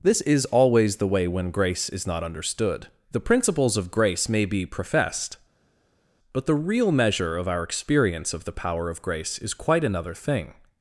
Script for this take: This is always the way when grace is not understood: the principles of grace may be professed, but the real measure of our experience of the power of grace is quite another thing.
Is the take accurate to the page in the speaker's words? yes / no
yes